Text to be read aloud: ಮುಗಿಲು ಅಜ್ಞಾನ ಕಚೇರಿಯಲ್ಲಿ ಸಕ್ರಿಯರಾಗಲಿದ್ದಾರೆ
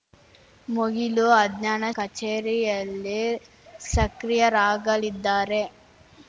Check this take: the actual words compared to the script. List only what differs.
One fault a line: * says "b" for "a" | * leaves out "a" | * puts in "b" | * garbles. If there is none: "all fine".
all fine